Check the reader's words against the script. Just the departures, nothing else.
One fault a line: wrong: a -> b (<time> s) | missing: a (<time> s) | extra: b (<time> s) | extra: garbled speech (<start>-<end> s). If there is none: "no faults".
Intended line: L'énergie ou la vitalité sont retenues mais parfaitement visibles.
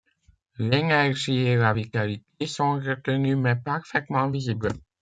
wrong: ou -> et (1.4 s)